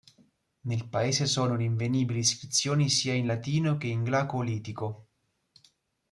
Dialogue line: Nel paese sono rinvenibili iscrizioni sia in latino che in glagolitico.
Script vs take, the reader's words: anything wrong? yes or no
no